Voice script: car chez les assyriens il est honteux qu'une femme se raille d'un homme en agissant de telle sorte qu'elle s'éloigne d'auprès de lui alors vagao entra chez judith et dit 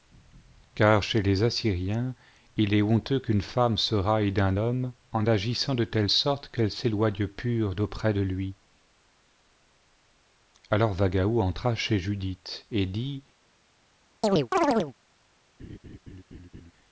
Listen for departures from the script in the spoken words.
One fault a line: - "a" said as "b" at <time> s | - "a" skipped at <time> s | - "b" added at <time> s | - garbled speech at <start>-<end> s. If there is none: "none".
- "pure" added at 7.3 s